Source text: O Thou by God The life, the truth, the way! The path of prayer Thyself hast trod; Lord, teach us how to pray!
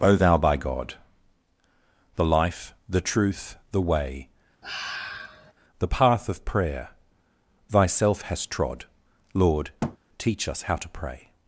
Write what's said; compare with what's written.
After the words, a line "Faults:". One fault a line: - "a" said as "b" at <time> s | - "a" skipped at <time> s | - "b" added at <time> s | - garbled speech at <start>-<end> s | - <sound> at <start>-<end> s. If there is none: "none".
O Thou by God The life, the truth, the way! The path of prayer Thyself hast trod; Lord, teach us how to pray!
Faults:
- sigh at 4.6-5.5 s
- thud at 9.8-10.0 s